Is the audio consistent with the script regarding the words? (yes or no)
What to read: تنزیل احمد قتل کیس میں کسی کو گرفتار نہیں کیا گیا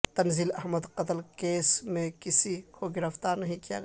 yes